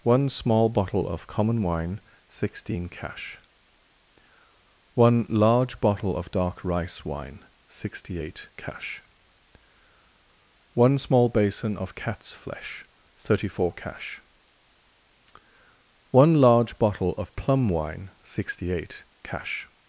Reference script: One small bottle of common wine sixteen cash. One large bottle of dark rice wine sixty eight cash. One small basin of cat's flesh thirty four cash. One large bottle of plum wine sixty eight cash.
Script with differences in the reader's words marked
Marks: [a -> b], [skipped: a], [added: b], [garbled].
One small bottle of common wine sixteen cash. One large bottle of dark rice wine sixty eight cash. One small basin of cat's flesh thirty four cash. One large bottle of plum wine sixty eight cash.